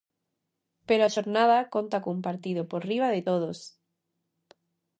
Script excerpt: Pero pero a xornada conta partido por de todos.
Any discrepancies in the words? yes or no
yes